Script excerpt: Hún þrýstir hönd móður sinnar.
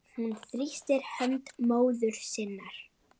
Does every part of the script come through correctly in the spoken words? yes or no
yes